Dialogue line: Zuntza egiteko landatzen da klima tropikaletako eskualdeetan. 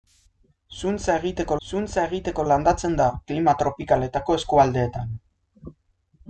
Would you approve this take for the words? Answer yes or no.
no